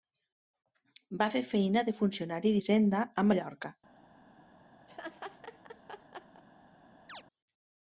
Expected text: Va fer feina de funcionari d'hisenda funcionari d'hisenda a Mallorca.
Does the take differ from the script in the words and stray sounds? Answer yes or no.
yes